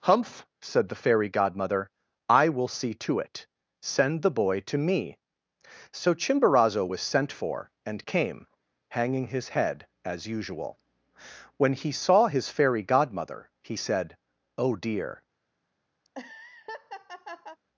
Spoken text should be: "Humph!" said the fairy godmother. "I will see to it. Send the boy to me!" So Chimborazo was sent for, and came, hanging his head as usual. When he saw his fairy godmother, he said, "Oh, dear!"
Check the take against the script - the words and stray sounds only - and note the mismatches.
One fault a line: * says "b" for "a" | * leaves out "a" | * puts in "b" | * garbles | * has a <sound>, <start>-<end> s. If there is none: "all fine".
* has a laugh, 16.0-17.6 s